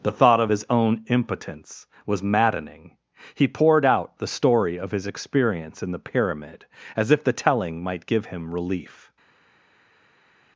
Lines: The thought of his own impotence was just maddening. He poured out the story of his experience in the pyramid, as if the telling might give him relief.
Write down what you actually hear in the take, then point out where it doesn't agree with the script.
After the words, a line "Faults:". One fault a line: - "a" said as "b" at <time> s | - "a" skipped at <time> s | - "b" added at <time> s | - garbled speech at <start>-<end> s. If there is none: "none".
The thought of his own impotence was maddening. He poured out the story of his experience in the pyramid, as if the telling might give him relief.
Faults:
- "just" skipped at 2.2 s